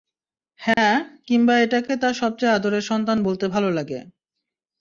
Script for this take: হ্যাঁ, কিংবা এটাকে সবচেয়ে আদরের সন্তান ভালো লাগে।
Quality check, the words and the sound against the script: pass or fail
fail